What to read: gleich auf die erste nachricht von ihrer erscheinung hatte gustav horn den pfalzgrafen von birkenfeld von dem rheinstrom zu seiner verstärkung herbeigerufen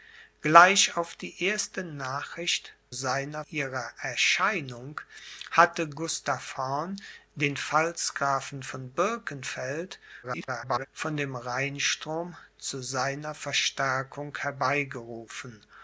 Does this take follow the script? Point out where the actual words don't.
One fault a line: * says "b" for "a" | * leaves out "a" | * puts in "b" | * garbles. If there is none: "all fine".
* says "seiner" for "von"
* garbles